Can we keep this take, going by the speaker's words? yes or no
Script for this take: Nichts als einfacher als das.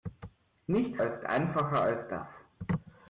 yes